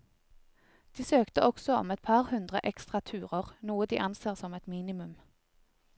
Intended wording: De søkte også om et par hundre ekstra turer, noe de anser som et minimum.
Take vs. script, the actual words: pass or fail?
pass